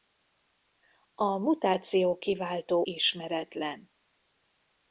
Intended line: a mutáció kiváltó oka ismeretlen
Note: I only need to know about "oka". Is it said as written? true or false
false